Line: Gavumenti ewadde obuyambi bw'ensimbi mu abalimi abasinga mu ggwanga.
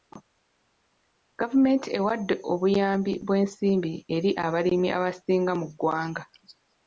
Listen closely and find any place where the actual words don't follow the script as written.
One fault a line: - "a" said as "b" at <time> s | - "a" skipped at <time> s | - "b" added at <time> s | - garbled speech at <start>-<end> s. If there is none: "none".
- "mu" said as "eri" at 4.2 s